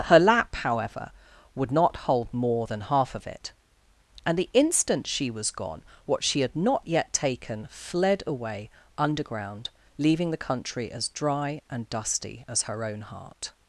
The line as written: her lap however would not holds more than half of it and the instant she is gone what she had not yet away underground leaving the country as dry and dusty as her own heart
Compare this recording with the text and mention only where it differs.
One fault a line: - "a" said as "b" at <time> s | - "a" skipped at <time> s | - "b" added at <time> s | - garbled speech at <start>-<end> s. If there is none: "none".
- "holds" said as "hold" at 1.9 s
- "is" said as "was" at 5.3 s
- "taken fled" added at 7.1 s